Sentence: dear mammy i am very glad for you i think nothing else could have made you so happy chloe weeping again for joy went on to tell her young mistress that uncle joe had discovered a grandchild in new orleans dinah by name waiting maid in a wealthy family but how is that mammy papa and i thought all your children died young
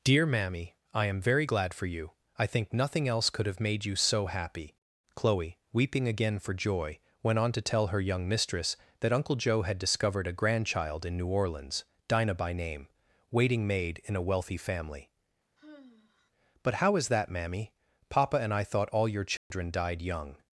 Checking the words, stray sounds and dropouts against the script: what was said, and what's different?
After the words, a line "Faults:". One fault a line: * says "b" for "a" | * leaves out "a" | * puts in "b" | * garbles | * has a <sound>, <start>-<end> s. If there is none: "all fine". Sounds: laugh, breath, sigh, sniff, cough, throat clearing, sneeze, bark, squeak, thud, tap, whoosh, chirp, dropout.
dear mammy i am very glad for you i think nothing else could have made you so happy chloe weeping again for joy went on to tell her young mistress that uncle joe had discovered a grandchild in new orleans dinah by name waiting maid in a wealthy family but how is that mammy papa and i thought all your children died young
Faults:
* has a sigh, 15.6-16.3 s
* has a dropout, 19.4-19.5 s